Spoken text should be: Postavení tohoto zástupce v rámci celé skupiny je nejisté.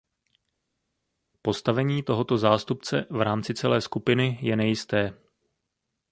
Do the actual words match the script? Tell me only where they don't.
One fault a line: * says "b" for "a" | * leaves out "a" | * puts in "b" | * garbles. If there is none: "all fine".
all fine